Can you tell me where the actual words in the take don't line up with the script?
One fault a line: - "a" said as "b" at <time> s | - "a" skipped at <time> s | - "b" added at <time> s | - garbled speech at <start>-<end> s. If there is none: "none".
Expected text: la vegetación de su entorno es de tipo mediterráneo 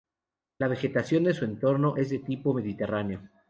none